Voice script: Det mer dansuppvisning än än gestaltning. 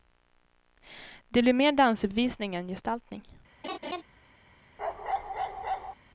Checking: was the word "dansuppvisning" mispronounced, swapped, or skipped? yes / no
no